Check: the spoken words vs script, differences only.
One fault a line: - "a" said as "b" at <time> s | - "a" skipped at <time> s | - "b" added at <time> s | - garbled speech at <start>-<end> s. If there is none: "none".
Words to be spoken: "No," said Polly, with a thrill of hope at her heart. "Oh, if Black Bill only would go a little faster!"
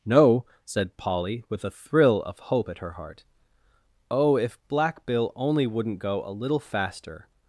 - "would" said as "wouldn't" at 5.7 s